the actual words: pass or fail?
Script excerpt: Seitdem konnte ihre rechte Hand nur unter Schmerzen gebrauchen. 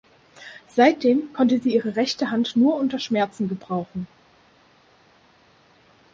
fail